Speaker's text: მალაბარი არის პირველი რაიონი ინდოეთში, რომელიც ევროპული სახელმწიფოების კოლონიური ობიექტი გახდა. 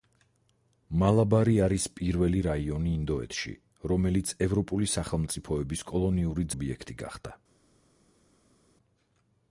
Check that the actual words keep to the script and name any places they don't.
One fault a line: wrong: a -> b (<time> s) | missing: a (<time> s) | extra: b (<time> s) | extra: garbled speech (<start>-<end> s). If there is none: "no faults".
no faults